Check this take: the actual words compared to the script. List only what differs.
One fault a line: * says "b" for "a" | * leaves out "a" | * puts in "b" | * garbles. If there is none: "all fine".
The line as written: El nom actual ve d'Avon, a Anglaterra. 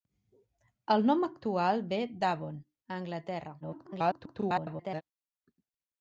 * garbles